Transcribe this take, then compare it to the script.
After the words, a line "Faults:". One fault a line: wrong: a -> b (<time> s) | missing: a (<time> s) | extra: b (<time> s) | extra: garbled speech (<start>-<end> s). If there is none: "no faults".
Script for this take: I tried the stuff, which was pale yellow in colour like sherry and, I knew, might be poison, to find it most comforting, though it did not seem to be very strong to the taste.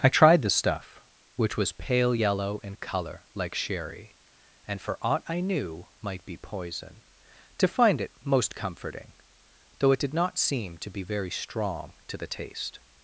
I tried the stuff, which was pale yellow in colour like sherry and, for aught I knew, might be poison, to find it most comforting, though it did not seem to be very strong to the taste.
Faults:
extra: for aught (4.8 s)